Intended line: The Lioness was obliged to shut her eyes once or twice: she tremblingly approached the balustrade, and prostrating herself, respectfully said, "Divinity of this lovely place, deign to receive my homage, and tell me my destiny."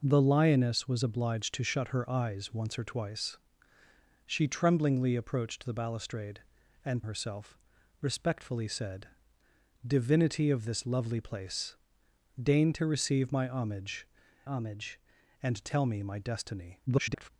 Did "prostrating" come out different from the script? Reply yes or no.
yes